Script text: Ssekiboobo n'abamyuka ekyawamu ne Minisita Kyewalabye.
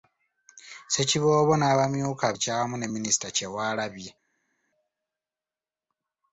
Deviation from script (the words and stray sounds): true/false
false